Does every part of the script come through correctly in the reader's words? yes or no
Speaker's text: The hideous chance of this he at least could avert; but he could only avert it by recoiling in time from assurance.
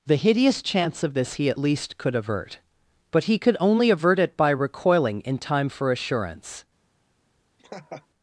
no